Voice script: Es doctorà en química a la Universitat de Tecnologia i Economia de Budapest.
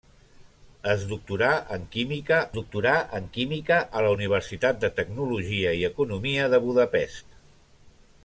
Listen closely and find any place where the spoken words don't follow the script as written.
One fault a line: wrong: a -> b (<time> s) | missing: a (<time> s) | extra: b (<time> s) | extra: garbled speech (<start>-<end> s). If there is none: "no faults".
extra: doctorà en química (2.6 s)